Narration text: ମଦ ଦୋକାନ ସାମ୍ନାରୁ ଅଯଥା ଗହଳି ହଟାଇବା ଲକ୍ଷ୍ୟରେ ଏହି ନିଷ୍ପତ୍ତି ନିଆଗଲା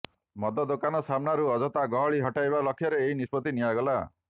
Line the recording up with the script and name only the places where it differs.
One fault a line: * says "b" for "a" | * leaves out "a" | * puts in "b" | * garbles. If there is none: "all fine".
all fine